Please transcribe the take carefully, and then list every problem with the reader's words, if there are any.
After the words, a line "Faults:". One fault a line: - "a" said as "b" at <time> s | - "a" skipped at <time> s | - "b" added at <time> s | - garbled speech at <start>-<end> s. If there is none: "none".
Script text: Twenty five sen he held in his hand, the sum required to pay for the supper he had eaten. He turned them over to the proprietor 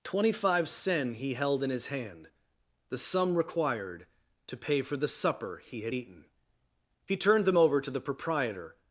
Twenty five sen he held in his hand, the sum required to pay for the supper he had eaten. He turned them over to the proprietor
Faults:
none